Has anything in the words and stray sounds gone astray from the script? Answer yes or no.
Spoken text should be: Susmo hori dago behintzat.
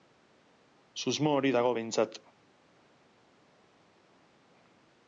no